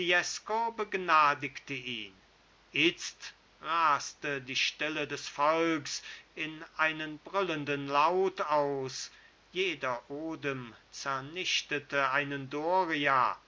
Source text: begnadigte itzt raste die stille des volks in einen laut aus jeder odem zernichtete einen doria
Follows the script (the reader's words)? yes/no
no